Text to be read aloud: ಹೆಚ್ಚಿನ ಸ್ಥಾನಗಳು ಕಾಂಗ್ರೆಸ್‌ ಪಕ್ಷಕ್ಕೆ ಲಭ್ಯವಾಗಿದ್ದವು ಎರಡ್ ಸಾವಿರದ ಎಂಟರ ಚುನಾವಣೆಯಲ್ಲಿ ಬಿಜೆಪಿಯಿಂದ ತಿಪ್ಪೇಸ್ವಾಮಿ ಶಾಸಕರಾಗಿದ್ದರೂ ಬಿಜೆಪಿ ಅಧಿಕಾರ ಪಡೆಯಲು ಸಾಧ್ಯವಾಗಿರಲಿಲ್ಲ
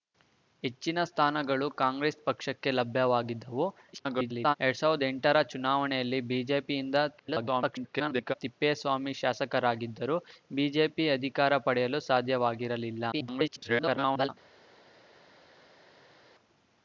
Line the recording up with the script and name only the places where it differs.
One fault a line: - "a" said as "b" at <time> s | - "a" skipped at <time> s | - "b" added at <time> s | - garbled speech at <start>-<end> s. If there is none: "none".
- garbled speech at 3.9-4.6 s
- garbled speech at 7.2-8.3 s
- garbled speech at 13.1-14.3 s